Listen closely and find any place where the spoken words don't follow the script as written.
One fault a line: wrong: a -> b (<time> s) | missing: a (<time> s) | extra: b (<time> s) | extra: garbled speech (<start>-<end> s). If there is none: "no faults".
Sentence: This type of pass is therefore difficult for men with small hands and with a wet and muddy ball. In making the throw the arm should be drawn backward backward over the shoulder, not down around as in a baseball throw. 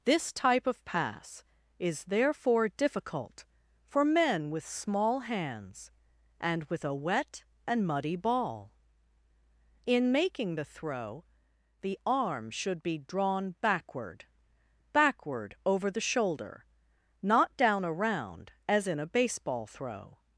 no faults